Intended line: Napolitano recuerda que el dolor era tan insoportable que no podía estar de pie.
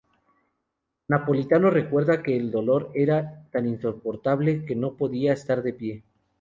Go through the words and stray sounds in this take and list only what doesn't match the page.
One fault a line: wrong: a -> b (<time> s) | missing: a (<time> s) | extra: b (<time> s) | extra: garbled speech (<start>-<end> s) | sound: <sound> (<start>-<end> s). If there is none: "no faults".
no faults